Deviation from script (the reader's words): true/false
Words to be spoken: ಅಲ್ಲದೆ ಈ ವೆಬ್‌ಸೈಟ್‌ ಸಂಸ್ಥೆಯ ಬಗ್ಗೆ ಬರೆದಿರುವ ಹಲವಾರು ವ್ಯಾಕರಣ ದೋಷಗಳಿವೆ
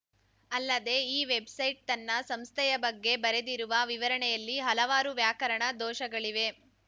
true